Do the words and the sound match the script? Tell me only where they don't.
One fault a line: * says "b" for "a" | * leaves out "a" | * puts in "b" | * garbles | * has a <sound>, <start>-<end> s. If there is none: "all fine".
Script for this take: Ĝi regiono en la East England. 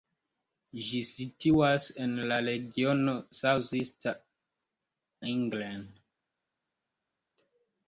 * says "situas" for "regiono"
* puts in "regiono South"